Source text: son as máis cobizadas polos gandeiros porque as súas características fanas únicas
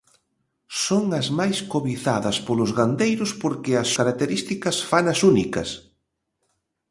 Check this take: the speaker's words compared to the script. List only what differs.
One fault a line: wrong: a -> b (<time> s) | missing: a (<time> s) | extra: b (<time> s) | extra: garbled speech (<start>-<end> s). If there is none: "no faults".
missing: súas (3.9 s)